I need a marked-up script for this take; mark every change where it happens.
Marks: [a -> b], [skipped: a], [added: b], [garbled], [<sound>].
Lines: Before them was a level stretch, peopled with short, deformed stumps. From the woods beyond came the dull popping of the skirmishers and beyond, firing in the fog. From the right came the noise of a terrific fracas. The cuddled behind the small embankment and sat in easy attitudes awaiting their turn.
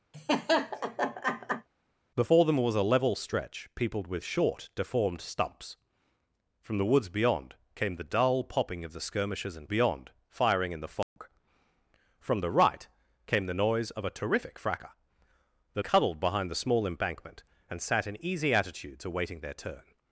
[laugh] Before them was a level stretch, peopled with short, deformed stumps. From the woods beyond came the dull popping of the skirmishers and beyond, firing in the fog. [dropout] From the right came the noise of a terrific fracas. The cuddled behind the small embankment and sat in easy attitudes awaiting their turn.